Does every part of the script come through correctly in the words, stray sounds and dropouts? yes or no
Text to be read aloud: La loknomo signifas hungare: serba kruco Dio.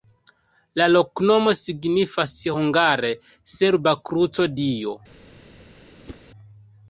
no